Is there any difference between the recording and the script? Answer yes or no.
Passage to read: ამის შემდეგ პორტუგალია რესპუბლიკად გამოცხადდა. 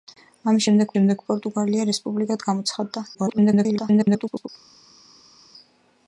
yes